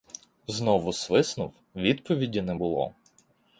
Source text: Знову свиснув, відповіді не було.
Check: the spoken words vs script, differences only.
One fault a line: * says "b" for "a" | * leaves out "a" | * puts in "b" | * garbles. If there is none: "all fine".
all fine